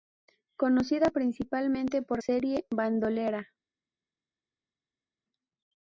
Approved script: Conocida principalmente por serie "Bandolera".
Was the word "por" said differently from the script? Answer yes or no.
no